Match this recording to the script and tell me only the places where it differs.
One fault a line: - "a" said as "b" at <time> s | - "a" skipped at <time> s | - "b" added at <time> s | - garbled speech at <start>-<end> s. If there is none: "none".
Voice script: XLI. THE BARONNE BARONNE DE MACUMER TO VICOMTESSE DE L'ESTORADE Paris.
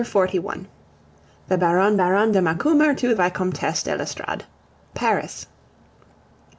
none